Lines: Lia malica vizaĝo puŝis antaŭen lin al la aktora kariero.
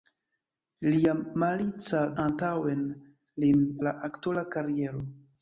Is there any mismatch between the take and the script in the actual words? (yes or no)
yes